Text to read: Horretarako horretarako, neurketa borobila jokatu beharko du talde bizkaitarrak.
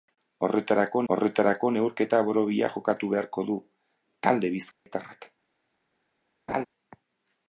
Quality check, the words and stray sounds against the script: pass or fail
fail